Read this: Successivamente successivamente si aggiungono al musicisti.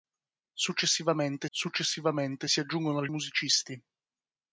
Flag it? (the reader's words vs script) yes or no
no